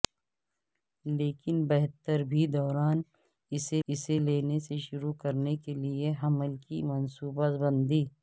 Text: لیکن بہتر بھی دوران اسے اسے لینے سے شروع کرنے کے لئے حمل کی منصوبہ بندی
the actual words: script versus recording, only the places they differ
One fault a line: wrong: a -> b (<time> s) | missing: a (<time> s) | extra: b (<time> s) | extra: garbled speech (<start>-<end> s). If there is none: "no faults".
no faults